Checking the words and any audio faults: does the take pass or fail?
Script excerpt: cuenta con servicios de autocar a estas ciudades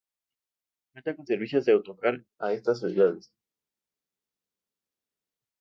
pass